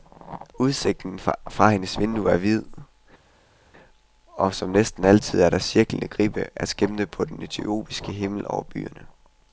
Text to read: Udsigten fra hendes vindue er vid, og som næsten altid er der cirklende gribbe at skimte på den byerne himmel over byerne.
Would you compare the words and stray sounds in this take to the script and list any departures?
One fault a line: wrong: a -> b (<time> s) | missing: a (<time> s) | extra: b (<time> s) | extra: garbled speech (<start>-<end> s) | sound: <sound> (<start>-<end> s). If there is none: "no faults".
wrong: byerne -> etiopiske (7.4 s)